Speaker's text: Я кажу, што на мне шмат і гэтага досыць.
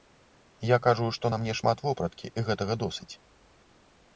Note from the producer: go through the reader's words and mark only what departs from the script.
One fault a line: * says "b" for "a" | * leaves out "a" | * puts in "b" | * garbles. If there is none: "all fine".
* puts in "вопраткі"